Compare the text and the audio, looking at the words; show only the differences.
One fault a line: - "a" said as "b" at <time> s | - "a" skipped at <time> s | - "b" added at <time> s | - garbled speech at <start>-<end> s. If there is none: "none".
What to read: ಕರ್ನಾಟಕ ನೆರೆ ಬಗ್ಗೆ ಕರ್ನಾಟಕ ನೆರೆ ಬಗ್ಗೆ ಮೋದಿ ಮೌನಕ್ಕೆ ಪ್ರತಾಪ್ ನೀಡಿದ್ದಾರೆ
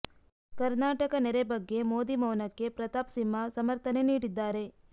- "ಕರ್ನಾಟಕ ನೆರೆ ಬಗ್ಗೆ" skipped at 1.8 s
- "ಸಿಂಹ ಸಮರ್ಥನೆ" added at 3.1 s